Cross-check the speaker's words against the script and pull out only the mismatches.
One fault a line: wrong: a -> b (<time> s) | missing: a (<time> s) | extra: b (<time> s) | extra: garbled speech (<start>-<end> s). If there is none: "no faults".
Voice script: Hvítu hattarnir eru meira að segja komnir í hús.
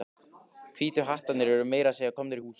no faults